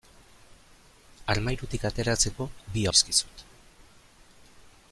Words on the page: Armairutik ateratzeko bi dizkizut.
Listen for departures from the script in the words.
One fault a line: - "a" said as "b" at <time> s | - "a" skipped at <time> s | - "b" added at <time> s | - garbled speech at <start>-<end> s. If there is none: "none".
none